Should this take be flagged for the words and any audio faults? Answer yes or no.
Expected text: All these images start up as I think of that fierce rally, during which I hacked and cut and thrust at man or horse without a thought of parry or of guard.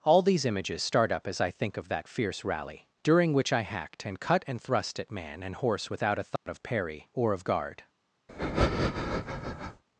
yes